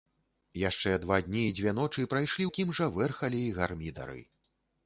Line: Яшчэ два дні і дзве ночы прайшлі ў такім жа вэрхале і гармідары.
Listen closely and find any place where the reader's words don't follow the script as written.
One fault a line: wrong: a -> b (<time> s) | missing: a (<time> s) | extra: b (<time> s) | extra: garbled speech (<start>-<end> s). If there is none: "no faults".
missing: ў (2.4 s)